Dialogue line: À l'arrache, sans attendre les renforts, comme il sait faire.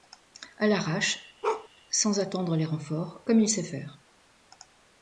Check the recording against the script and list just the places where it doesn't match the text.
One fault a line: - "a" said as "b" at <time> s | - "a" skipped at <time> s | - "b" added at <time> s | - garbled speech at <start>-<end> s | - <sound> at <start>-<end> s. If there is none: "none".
- bark at 1.4-1.7 s